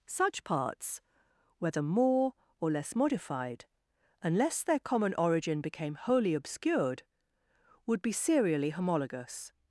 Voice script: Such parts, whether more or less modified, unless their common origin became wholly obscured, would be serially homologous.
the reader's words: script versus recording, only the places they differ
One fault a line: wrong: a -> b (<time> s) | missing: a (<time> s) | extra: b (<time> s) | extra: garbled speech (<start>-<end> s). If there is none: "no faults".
no faults